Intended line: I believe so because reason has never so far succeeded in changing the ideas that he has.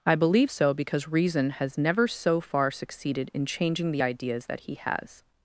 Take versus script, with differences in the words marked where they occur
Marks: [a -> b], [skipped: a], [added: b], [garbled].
I believe so because reason has never so far succeeded in changing the ideas that he has.